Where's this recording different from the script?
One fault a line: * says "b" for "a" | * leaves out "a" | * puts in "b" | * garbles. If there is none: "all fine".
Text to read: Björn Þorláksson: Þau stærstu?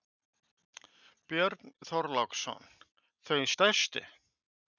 all fine